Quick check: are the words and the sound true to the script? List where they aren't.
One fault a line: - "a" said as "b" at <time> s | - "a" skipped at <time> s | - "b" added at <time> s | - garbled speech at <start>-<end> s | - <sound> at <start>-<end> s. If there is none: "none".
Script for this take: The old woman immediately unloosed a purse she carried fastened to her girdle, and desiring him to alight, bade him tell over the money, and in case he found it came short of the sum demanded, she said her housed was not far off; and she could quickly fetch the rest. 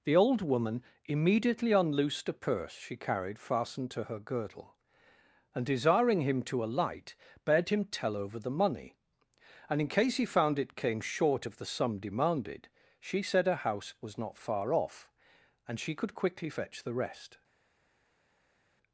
- "housed" said as "house" at 13.7 s